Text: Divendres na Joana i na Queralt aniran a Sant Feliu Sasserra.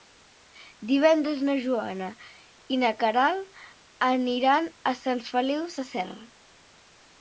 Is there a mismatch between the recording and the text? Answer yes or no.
no